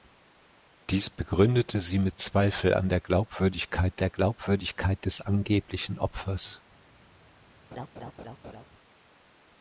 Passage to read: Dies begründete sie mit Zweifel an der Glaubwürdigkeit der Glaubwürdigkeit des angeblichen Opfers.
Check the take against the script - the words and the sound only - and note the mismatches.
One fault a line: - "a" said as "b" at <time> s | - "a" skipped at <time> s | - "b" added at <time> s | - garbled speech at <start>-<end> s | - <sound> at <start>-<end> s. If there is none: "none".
- laugh at 7.7-8.7 s